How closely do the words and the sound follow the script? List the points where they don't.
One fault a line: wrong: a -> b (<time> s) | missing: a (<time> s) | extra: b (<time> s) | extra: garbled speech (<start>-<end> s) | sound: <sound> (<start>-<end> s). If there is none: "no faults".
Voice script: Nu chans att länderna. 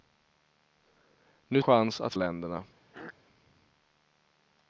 sound: throat clearing (2.9-3.1 s)